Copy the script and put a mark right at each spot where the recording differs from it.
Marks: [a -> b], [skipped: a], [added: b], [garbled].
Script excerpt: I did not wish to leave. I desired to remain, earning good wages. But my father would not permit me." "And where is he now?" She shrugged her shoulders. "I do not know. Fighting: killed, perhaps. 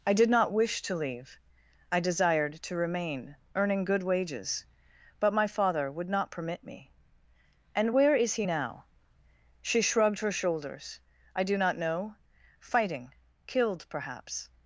I did not wish to leave. I desired to remain, earning good wages. But my father would not permit me." "And where is he now?" She shrugged her shoulders. "I do not know. Fighting: killed, perhaps.